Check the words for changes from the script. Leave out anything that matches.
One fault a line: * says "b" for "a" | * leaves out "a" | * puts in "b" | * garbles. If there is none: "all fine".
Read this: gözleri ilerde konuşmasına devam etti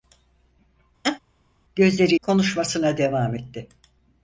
* leaves out "ilerde"